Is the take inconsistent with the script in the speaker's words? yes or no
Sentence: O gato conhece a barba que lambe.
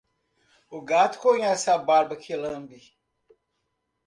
no